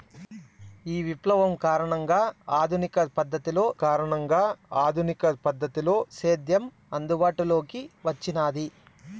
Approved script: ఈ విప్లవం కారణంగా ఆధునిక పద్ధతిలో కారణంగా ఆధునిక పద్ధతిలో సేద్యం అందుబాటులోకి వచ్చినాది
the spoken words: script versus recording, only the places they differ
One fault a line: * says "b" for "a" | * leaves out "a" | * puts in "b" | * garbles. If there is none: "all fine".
all fine